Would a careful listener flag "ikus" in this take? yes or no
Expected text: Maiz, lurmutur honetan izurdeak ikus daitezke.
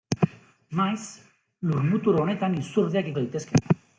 yes